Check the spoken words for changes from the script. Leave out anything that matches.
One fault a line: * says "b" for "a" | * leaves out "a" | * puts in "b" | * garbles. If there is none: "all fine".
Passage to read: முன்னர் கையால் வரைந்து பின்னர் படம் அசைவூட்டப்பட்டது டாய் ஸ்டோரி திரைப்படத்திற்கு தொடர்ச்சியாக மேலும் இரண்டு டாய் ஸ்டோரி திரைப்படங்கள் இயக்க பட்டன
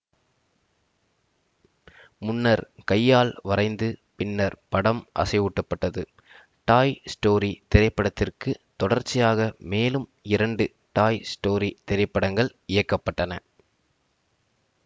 all fine